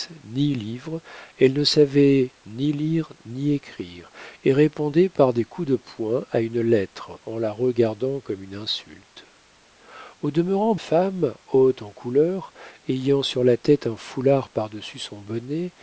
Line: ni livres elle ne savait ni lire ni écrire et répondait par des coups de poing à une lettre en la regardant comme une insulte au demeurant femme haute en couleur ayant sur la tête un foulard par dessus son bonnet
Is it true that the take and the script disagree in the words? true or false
false